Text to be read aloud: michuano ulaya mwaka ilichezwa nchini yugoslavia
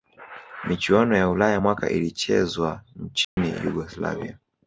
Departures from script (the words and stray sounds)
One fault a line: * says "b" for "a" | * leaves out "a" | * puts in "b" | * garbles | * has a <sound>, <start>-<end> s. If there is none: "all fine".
* puts in "ya"
* has a dropout, 3.2-3.4 s